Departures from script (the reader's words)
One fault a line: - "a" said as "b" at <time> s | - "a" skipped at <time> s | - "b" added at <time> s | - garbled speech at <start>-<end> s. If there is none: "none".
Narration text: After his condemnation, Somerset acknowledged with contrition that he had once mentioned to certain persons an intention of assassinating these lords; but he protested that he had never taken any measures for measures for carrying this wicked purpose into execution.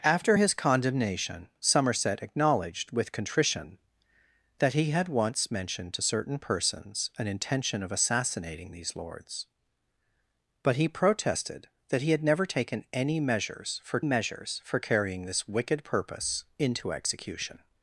none